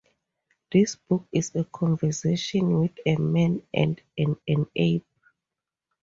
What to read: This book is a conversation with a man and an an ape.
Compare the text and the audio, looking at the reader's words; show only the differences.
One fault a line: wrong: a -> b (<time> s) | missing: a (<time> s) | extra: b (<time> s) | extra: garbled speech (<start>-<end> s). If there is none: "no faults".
no faults